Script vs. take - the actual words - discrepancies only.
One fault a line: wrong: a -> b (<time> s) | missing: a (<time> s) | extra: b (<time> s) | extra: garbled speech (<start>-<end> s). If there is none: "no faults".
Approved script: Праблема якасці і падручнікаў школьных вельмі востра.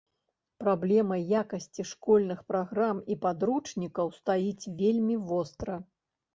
extra: школьных праграм (1.9 s)
wrong: школьных -> стаіць (4.2 s)